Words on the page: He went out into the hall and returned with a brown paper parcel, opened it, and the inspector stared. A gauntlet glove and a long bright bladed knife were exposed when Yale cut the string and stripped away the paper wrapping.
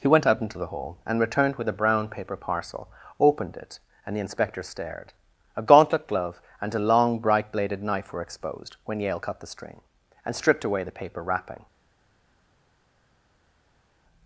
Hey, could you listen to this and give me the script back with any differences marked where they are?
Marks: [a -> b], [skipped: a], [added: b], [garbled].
He went out into the hall and returned with a brown paper parcel, opened it, and the inspector stared. A gauntlet glove and a long bright bladed knife were exposed when Yale cut the string and stripped away the paper wrapping.